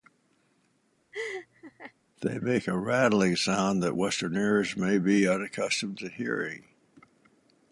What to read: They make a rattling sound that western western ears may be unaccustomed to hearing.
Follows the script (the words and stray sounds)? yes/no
no